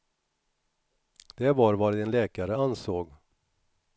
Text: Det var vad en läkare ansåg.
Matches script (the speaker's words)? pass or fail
pass